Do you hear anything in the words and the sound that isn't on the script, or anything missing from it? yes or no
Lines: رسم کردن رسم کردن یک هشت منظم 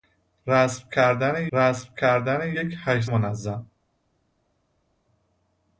no